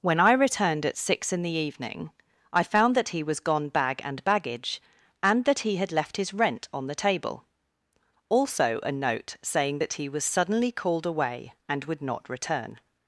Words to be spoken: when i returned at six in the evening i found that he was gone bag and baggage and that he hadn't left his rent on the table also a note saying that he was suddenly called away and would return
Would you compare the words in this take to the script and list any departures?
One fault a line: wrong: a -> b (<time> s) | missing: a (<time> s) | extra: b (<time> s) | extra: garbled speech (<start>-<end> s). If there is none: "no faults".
wrong: hadn't -> had (5.8 s)
extra: not (12.0 s)